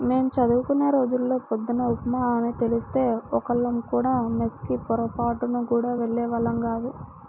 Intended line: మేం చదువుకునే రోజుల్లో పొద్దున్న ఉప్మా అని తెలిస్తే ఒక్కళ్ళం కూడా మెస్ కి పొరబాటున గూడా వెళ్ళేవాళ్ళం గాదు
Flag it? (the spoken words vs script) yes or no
no